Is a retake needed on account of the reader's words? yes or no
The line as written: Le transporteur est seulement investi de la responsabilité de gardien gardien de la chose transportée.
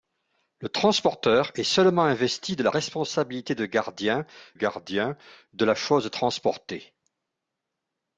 no